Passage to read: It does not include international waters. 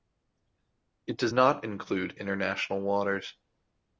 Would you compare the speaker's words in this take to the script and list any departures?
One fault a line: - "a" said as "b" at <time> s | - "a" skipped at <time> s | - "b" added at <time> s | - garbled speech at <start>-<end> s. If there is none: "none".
none